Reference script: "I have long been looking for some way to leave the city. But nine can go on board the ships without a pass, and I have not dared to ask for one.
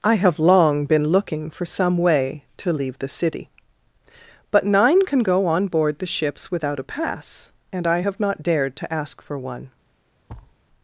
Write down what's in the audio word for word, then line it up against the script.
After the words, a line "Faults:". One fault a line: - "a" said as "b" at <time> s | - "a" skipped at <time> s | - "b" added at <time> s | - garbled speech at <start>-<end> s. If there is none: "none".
"I have long been looking for some way to leave the city. But nine can go on board the ships without a pass, and I have not dared to ask for one.
Faults:
none